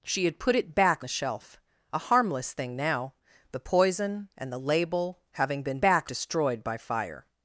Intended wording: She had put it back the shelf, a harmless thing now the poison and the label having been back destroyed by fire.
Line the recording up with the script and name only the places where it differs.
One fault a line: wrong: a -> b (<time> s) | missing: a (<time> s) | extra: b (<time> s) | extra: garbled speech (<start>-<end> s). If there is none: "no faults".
no faults